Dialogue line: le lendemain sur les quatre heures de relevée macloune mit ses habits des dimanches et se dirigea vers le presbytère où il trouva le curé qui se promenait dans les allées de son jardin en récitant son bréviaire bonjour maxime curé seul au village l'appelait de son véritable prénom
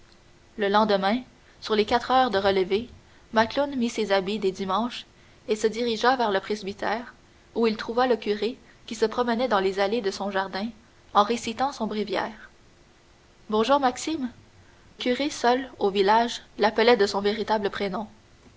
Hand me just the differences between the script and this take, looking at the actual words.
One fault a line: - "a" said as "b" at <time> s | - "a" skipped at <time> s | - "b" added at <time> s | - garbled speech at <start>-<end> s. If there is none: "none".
none